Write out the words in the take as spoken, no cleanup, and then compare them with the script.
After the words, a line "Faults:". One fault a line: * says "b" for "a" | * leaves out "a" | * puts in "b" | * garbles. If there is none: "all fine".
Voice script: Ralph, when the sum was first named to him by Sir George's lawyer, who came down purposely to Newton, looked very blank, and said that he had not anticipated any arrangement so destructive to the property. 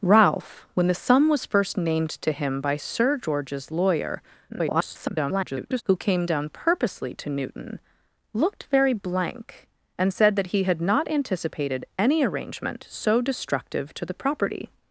Ralph, when the sum was first named to him by Sir George's lawyer, [garbled] who came down purposely to Newton, looked very blank, and said that he had not anticipated any arrangement so destructive to the property.
Faults:
* garbles